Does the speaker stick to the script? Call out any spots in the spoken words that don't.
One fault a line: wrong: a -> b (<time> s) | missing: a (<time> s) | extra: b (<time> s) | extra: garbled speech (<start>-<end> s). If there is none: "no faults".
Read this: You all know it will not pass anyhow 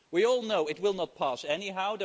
wrong: You -> We (0.1 s)